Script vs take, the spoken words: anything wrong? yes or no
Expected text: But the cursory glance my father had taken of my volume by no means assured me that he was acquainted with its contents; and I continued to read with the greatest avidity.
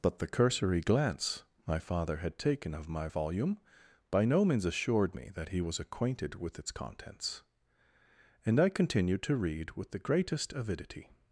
no